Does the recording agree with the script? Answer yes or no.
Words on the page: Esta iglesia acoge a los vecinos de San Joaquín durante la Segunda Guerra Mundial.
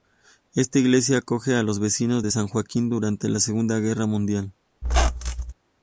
yes